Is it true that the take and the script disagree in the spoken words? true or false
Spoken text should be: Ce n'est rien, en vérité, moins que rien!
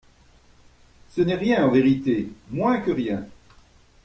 false